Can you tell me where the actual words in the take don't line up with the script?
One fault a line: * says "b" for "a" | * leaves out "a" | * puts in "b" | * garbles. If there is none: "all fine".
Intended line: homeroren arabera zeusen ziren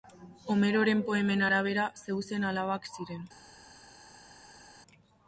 * puts in "poemen"
* puts in "alabak"